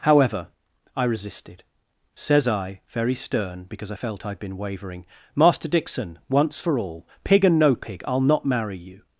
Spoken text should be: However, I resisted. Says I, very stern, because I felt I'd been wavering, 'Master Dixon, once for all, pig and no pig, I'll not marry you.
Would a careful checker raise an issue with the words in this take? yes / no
no